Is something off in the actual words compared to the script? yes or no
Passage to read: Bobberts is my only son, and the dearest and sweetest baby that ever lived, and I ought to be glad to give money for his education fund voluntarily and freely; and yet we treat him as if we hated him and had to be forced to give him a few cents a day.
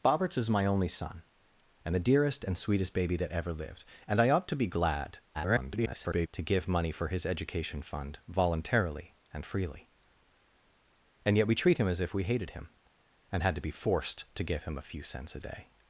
yes